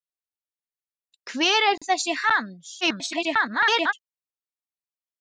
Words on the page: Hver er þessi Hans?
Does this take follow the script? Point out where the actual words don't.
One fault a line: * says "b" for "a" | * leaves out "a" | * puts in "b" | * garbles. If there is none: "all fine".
* garbles